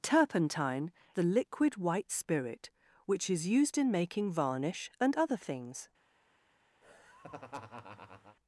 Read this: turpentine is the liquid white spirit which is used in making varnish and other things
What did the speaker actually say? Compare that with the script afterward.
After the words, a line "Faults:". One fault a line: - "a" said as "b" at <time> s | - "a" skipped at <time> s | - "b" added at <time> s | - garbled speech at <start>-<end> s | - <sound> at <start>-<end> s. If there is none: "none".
turpentine the liquid white spirit which is used in making varnish and other things
Faults:
- "is" skipped at 0.9 s
- laugh at 6.8-8.4 s